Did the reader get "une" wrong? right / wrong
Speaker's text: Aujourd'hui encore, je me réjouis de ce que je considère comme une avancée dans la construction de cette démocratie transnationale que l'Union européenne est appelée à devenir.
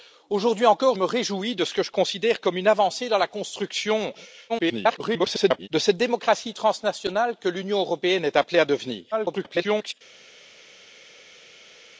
right